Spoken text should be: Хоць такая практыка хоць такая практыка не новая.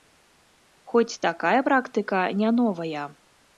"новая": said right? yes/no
yes